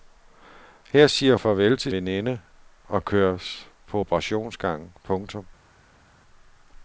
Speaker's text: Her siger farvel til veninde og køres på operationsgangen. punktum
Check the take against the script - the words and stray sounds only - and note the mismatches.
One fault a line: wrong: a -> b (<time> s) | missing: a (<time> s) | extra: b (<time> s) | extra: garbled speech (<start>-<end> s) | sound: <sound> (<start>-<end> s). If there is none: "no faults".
no faults